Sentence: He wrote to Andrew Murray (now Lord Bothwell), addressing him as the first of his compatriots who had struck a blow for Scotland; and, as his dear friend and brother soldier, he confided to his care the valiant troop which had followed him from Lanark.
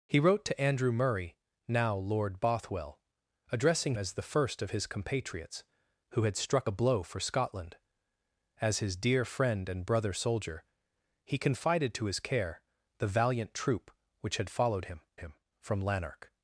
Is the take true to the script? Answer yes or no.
no